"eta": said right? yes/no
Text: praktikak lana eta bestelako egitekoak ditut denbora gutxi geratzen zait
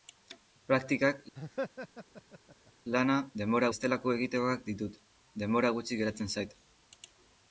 no